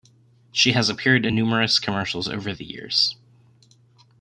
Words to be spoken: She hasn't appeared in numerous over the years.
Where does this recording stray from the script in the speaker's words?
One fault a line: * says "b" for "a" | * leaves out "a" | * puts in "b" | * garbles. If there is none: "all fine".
* says "has" for "hasn't"
* puts in "commercials"